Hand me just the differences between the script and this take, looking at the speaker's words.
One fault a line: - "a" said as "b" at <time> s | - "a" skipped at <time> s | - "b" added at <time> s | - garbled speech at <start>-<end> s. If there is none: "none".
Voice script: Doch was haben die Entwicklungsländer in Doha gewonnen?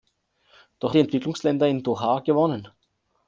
- "was haben" skipped at 0.9 s